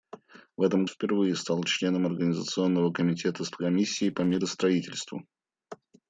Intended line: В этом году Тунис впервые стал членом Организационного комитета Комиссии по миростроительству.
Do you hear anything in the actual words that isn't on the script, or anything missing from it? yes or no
yes